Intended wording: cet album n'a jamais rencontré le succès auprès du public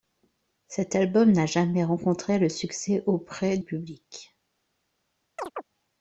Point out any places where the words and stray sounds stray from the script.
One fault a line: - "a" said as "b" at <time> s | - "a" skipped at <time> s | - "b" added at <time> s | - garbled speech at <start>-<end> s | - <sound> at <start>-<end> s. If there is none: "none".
- "du" skipped at 3.6 s
- chirp at 5.4-5.6 s